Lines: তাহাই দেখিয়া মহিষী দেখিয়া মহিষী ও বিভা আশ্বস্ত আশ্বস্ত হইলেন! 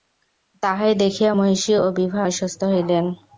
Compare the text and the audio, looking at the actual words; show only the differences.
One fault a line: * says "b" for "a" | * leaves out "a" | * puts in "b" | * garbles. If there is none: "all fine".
* leaves out "দেখিয়া মহিষী"
* leaves out "আশ্বস্ত"